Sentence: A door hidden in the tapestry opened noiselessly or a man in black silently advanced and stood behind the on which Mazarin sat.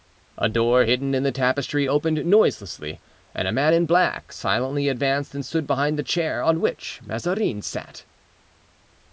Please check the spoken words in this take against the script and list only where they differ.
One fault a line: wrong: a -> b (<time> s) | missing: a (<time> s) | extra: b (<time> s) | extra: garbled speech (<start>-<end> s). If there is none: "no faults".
wrong: or -> and (3.3 s)
extra: chair (6.0 s)